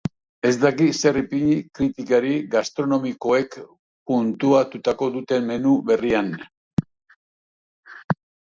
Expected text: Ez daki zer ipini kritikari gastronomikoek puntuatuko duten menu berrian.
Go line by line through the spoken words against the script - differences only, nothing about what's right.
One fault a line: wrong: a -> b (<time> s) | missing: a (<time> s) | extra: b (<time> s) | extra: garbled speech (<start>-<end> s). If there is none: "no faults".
no faults